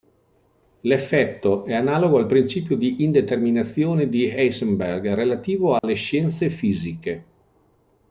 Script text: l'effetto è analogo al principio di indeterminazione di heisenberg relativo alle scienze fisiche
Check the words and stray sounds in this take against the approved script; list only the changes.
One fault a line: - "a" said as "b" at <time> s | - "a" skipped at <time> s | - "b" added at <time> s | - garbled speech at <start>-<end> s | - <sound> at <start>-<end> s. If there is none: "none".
- dropout at 5.8-5.8 s